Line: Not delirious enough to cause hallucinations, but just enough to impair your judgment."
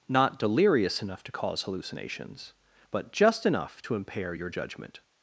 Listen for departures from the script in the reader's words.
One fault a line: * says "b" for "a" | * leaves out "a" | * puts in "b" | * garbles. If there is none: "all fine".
all fine